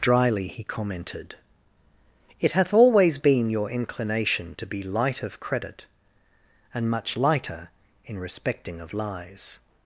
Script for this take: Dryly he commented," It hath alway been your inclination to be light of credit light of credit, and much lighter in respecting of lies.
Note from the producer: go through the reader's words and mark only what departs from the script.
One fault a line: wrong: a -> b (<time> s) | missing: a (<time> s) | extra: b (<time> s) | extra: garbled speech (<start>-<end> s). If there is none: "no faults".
wrong: alway -> always (2.7 s)
missing: light of credit (5.8 s)